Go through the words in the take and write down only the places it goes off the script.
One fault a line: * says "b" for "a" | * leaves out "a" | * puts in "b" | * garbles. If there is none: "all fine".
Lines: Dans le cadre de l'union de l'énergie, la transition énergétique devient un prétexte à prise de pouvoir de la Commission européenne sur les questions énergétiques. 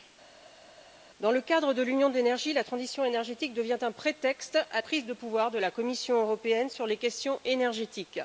all fine